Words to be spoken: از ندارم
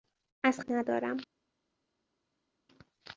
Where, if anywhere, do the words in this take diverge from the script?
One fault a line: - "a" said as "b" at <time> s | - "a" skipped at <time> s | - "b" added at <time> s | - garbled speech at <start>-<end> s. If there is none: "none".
none